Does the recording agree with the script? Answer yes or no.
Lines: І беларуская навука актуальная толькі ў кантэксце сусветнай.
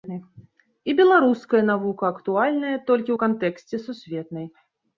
yes